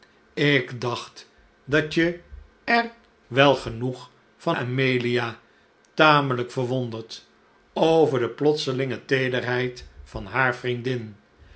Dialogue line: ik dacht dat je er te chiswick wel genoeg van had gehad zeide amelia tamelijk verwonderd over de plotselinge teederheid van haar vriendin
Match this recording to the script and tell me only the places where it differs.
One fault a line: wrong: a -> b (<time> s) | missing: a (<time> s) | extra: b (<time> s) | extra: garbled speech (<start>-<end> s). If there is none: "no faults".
missing: te chiswick (2.9 s)
missing: had gehad zeide (4.6 s)